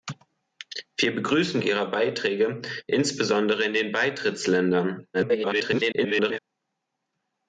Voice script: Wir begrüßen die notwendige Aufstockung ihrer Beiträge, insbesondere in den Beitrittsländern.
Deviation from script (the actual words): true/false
true